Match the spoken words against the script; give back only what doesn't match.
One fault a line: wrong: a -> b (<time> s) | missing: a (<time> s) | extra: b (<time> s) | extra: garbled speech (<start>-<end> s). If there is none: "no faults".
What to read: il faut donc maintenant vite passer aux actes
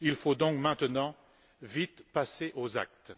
no faults